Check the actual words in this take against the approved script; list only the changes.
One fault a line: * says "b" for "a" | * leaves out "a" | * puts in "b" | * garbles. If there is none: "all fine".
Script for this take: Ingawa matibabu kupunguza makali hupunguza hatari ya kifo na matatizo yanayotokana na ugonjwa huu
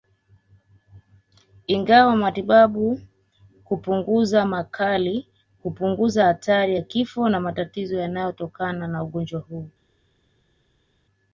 all fine